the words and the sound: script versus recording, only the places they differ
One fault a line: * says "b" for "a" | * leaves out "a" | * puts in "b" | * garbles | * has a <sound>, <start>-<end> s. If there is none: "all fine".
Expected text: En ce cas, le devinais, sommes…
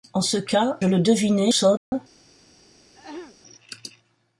* has a dropout, 1.8-1.9 s
* has a throat clearing, 2.9-3.4 s